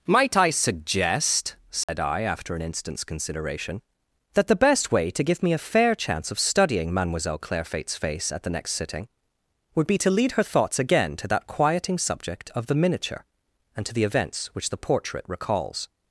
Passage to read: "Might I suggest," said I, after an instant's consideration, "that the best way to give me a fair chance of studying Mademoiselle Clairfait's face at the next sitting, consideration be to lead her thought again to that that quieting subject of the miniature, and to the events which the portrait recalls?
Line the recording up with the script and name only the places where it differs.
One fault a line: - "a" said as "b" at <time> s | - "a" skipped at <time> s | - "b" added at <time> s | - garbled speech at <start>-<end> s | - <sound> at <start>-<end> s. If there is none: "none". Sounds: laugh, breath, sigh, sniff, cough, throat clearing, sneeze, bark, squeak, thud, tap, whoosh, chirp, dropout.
- dropout at 1.8-1.9 s
- "consideration" said as "would" at 9.8 s
- "thought" said as "thoughts" at 10.4 s
- "that" skipped at 11.5 s